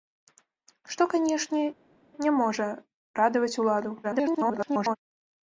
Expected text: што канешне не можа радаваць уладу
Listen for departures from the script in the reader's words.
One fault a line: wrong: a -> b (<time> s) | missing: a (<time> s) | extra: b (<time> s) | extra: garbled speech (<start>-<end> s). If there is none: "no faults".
extra: garbled speech (4.0-5.0 s)